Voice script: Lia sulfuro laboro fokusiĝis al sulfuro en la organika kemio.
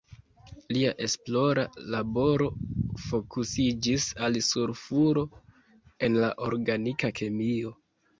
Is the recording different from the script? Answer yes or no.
yes